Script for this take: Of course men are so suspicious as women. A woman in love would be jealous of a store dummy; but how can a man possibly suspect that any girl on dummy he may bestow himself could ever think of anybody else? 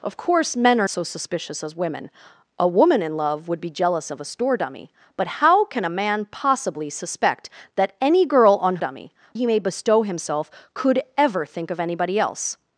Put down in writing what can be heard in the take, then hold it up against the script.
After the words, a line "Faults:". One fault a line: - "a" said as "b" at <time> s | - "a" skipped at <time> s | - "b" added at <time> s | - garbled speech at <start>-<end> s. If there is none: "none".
Of course men are so suspicious as women. A woman in love would be jealous of a store dummy; but how can a man possibly suspect that any girl on dummy he may bestow himself could ever think of anybody else?
Faults:
none